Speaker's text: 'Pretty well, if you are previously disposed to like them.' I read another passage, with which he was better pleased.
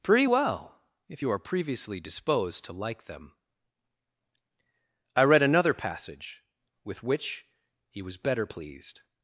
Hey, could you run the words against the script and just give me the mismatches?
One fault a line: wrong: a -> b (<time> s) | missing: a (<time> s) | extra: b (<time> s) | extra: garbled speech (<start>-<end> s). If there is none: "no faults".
no faults